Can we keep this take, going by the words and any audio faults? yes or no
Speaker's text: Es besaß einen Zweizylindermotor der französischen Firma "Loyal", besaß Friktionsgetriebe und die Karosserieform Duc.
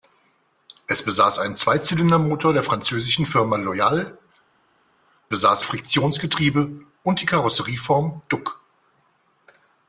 yes